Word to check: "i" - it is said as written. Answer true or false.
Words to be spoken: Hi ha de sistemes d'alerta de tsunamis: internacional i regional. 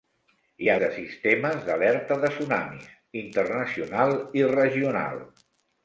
true